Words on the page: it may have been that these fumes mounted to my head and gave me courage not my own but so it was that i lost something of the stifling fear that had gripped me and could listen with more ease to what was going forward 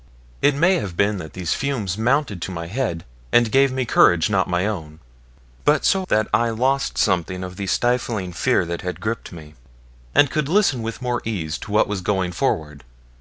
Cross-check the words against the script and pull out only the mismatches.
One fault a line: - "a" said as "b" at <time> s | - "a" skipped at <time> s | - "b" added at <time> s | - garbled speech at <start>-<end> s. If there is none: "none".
- "it was" skipped at 6.1 s